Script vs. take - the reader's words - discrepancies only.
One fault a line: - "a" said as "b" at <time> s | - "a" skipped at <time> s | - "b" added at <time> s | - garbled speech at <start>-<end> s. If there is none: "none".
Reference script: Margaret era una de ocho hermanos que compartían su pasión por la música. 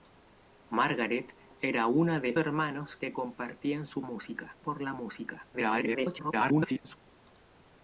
- "ocho" skipped at 2.4 s
- "pasión" said as "música" at 4.0 s
- garbled speech at 5.5-7.0 s